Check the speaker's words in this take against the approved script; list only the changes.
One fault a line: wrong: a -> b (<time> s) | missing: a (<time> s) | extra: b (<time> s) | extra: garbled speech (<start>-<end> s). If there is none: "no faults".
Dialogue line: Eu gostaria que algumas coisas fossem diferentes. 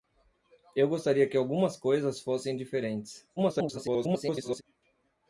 extra: garbled speech (3.4-4.6 s)